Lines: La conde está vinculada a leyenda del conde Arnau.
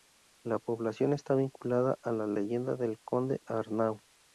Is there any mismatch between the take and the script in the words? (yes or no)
yes